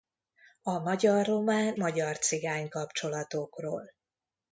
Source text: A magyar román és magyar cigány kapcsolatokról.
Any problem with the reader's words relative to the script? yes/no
yes